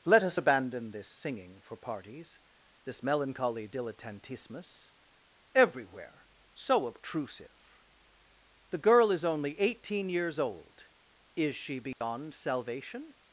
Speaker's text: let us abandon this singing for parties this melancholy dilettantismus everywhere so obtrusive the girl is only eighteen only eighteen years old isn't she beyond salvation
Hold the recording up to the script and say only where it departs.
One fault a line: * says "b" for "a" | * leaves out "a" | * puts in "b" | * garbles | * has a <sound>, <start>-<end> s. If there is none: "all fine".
* leaves out "only eighteen"
* says "is" for "isn't"
* has a dropout, 11.9-12.0 s